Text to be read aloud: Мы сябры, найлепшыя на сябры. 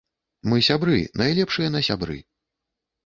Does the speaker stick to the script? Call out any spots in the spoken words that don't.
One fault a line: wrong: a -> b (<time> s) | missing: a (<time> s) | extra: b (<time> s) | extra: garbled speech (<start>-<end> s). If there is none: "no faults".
no faults